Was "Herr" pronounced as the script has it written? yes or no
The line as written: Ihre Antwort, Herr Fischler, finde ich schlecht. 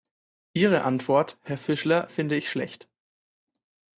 yes